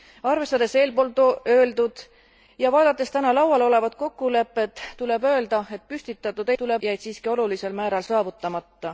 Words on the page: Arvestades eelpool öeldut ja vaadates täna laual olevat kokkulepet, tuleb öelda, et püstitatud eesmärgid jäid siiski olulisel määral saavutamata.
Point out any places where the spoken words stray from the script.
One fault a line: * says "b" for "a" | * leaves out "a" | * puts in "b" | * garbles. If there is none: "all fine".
* says "tuleb" for "eesmärgid"